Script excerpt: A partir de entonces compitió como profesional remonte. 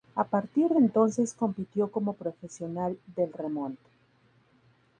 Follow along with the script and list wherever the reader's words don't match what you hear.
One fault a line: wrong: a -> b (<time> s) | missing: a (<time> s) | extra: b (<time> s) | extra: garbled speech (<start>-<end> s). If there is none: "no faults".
extra: del (3.2 s)